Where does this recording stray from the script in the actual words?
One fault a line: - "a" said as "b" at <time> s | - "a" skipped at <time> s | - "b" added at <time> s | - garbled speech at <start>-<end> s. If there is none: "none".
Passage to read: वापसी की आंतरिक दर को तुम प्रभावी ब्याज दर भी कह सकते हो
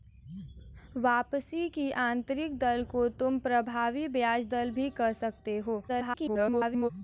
- garbled speech at 5.9-6.9 s